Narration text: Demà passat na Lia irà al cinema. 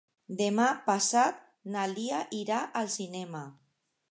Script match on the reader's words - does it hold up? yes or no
yes